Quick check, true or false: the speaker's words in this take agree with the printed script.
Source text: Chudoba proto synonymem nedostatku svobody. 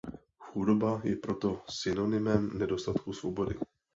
false